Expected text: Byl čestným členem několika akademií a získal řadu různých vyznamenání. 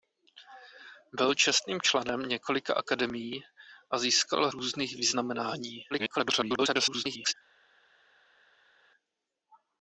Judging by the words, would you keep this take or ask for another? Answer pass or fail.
fail